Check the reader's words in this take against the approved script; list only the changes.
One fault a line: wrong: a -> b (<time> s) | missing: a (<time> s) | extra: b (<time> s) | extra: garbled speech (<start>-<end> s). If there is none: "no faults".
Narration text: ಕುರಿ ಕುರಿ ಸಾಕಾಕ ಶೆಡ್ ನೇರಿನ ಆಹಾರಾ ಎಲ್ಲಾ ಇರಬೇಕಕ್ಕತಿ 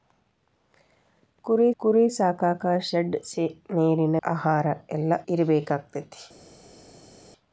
no faults